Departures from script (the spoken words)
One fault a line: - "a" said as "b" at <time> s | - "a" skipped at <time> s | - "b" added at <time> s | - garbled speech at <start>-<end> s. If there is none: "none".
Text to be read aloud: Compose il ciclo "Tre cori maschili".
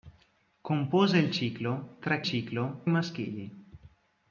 - "cori" said as "ciclo" at 2.2 s